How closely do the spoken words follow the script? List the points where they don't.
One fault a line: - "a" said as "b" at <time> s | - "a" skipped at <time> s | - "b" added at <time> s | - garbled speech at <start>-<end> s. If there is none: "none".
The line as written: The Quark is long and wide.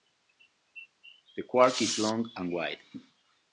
none